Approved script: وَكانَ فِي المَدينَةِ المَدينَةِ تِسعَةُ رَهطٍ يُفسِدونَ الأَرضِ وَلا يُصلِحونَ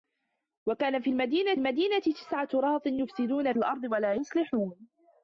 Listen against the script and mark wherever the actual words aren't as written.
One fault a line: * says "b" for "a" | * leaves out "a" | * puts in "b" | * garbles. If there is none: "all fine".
all fine